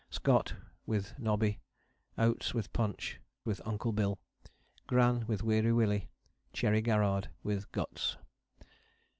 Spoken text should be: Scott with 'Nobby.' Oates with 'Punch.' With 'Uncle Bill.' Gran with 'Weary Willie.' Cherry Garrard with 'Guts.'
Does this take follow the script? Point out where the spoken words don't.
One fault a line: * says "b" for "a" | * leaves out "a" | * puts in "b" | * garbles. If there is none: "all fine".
all fine